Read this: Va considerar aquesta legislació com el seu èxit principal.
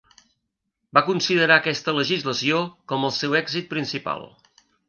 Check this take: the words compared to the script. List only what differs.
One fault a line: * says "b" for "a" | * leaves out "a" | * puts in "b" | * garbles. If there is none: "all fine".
all fine